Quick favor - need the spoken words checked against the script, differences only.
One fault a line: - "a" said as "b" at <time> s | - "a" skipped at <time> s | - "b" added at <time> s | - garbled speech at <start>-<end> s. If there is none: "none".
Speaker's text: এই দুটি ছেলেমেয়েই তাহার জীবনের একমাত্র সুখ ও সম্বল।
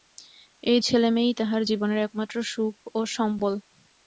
- "দুটি" skipped at 0.8 s